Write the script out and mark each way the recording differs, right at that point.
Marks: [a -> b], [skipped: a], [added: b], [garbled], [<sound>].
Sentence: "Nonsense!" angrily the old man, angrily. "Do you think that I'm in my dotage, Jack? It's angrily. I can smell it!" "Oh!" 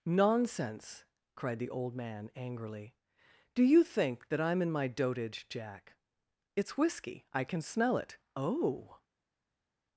"Nonsense!" [angrily -> cried] the old man, angrily. "Do you think that I'm in my dotage, Jack? It's [angrily. -> whiskey] I can smell it!" "Oh!"